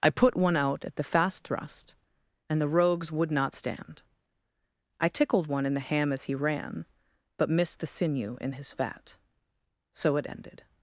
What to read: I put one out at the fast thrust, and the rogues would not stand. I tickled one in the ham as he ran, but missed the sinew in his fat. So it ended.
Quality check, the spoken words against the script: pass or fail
pass